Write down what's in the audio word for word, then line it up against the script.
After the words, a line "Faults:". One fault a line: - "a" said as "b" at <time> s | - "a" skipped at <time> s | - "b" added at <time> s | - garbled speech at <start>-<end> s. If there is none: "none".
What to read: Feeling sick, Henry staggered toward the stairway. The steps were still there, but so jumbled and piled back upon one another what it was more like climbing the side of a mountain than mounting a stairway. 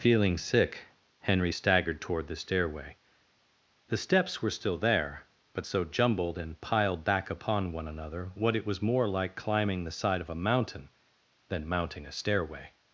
Feeling sick, Henry staggered toward the stairway. The steps were still there, but so jumbled and piled back upon one another what it was more like climbing the side of a mountain than mounting a stairway.
Faults:
none